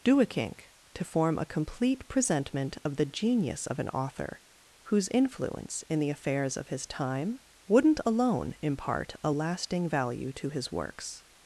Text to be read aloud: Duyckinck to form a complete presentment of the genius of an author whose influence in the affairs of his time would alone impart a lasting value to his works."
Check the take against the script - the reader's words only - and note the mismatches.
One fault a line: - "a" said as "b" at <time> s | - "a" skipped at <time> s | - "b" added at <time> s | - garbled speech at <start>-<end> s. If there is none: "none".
- "would" said as "wouldn't" at 7.7 s